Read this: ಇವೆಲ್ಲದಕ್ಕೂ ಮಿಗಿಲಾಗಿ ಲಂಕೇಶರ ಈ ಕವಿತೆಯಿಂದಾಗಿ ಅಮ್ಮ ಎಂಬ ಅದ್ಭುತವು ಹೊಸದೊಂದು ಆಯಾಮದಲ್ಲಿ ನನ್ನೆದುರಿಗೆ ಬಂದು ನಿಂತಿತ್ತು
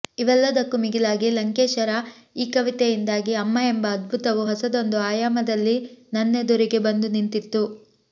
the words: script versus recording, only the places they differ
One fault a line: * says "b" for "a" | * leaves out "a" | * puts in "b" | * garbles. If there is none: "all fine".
all fine